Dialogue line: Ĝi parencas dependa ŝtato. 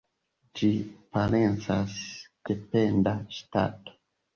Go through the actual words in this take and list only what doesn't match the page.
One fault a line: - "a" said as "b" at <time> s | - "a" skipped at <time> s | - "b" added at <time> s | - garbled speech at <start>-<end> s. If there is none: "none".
none